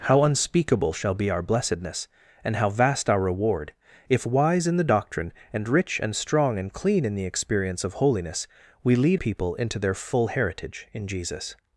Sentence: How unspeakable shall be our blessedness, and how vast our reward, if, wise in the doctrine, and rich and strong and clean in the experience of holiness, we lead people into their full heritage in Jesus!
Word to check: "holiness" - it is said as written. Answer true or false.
true